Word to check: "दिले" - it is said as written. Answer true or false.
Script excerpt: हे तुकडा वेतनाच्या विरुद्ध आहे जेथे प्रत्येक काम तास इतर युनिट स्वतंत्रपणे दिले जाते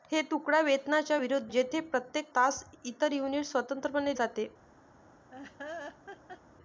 false